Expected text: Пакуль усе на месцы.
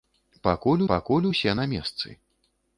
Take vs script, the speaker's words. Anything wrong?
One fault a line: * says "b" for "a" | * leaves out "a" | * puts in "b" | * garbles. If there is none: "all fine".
* puts in "пакуль"